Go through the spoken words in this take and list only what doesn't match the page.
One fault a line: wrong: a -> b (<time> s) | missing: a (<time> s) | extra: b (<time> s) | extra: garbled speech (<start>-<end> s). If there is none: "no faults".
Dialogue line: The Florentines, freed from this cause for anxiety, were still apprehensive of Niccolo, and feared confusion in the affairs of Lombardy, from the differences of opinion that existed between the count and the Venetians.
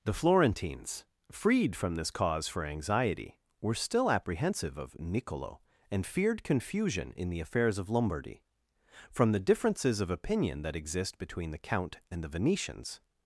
wrong: existed -> exist (10.8 s)